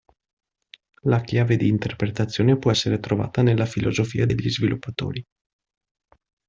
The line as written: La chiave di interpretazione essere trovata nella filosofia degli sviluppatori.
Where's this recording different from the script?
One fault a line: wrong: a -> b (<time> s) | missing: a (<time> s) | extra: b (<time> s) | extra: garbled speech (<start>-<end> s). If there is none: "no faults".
extra: può (2.6 s)